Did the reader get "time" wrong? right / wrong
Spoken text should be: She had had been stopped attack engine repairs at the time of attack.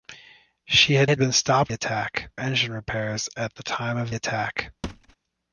right